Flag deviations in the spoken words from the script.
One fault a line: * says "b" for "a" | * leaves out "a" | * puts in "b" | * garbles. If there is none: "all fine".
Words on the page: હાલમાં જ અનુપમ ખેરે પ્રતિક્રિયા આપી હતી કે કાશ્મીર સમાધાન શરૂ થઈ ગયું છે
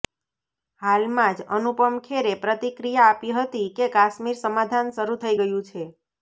all fine